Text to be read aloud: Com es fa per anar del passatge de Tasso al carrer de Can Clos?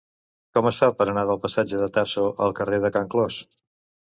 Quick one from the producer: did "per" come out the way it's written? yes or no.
yes